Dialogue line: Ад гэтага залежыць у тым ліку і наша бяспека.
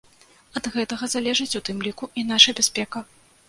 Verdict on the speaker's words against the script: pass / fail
pass